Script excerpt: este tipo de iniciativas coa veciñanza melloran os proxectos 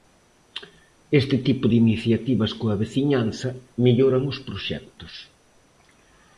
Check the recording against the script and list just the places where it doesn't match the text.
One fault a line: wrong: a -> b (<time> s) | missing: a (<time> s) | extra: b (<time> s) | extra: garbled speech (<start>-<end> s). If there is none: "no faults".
no faults